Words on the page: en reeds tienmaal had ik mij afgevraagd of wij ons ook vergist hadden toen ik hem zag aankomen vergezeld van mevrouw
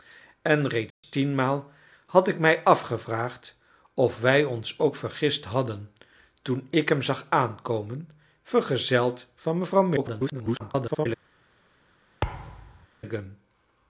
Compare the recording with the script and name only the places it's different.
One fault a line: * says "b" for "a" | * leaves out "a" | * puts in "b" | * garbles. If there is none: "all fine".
* garbles